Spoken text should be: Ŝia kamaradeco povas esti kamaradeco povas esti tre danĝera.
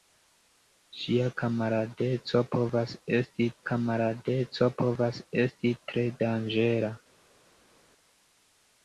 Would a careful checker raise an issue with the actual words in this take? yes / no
no